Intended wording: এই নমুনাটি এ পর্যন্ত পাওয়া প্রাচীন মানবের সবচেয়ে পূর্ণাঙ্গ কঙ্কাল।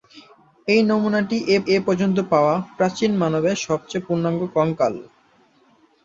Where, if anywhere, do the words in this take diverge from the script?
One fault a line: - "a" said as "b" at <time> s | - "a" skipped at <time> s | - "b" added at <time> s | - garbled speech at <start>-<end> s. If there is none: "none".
- "এ" added at 1.7 s